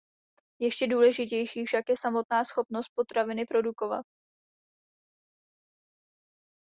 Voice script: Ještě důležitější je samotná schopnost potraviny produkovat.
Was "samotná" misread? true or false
false